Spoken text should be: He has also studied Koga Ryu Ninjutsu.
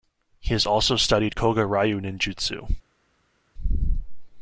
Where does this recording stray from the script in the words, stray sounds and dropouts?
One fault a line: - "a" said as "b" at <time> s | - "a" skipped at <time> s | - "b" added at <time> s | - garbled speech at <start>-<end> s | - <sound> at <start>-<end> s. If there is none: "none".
none